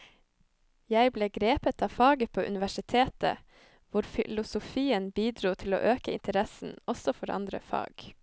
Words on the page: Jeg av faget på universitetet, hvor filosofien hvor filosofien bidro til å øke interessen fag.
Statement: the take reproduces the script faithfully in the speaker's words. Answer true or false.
false